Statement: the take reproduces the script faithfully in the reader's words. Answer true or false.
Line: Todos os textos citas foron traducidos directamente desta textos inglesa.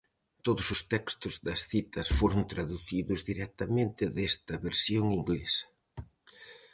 false